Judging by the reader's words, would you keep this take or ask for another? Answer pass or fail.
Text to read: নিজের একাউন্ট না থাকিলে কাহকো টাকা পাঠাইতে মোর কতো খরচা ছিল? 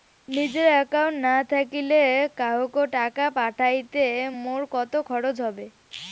fail